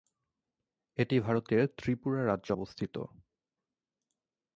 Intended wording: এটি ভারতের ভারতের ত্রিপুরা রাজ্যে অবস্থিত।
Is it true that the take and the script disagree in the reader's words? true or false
true